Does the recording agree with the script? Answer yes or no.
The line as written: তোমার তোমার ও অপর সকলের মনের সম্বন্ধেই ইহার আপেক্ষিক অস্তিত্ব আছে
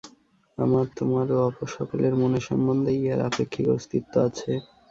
no